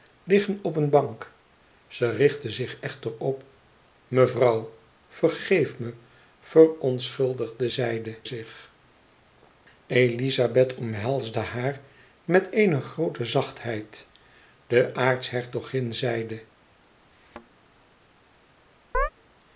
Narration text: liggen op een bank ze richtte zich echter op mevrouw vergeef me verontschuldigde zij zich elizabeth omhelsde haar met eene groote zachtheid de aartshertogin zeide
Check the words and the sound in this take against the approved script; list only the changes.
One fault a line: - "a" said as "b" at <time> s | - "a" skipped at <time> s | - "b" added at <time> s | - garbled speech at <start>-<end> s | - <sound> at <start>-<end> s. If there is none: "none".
- "zij" said as "zeide" at 7.7 s
- thud at 17.1-17.5 s
- chirp at 18.9-19.1 s